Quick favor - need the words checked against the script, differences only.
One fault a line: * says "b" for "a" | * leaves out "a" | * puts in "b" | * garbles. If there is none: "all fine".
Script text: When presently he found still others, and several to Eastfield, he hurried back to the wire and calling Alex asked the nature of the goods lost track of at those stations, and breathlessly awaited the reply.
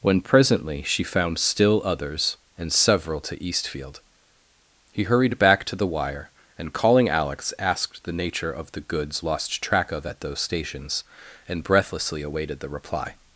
* says "she" for "he"